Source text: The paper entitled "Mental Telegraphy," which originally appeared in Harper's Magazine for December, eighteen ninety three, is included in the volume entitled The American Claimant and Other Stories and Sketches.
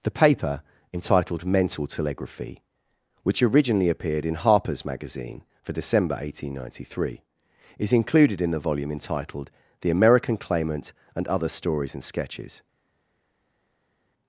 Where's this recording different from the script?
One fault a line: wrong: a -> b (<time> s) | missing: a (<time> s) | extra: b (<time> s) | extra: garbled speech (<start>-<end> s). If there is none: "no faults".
no faults